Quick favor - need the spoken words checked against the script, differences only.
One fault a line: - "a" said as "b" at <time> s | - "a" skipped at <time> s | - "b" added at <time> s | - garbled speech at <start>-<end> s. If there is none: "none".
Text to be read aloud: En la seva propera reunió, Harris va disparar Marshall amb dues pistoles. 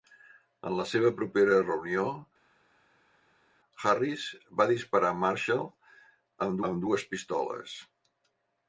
- "amb" added at 6.7 s